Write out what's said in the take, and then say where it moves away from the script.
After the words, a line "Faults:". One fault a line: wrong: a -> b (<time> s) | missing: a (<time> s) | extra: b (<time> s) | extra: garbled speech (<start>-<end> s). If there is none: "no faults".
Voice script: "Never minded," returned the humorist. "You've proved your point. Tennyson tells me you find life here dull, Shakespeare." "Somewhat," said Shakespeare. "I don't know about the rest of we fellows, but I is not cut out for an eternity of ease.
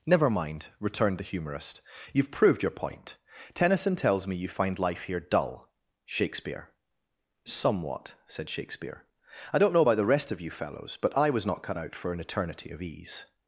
"Never mind," returned the humorist. "You've proved your point. Tennyson tells me you find life here dull, Shakespeare." "Somewhat," said Shakespeare. "I don't know about the rest of you fellows, but I was not cut out for an eternity of ease.
Faults:
wrong: minded -> mind (0.3 s)
wrong: we -> you (10.4 s)
wrong: is -> was (11.3 s)